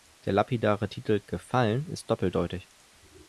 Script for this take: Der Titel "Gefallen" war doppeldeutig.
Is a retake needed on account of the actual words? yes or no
yes